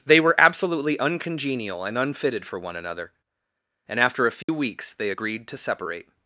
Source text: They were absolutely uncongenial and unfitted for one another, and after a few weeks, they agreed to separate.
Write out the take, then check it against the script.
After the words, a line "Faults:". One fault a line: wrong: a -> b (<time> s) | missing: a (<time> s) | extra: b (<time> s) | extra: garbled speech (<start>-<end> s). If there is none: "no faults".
They were absolutely uncongenial and unfitted for one another, and after a few weeks, they agreed to separate.
Faults:
no faults